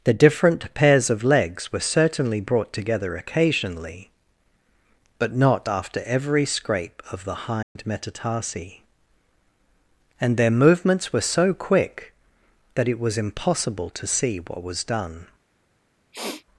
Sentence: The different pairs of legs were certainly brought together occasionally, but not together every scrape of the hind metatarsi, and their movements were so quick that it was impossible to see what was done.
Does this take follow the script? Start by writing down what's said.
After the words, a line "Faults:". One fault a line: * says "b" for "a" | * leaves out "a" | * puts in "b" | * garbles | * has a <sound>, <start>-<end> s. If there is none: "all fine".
The different pairs of legs were certainly brought together occasionally, but not after every scrape of the hind metatarsi, and their movements were so quick that it was impossible to see what was done.
Faults:
* says "after" for "together"
* has a dropout, 7.6-7.8 s
* has a sniff, 16.1-16.4 s